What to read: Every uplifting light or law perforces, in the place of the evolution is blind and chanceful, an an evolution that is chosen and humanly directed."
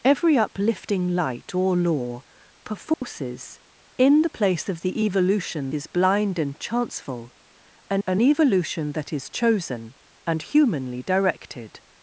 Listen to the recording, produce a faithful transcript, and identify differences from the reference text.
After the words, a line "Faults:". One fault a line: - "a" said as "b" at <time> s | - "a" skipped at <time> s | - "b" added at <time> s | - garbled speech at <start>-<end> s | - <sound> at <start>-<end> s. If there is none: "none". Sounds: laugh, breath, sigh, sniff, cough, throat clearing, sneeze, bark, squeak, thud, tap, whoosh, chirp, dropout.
Every uplifting light or law perforces, in the place of the evolution is blind and chanceful, an an evolution that is chosen and humanly directed."
Faults:
- dropout at 2.9-3.0 s